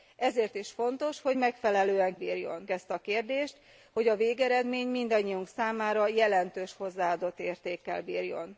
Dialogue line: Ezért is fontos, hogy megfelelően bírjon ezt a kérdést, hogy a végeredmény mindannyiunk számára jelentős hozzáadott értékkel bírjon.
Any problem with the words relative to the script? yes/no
no